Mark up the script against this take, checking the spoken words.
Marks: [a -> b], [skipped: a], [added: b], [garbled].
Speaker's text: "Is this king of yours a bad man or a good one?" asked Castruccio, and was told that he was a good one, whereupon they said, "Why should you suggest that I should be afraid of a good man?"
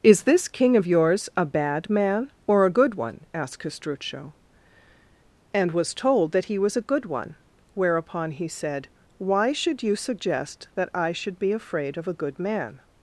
"Is this king of yours a bad man or a good one?" asked Castruccio, and was told that he was a good one, whereupon [they -> he] said, "Why should you suggest that I should be afraid of a good man?"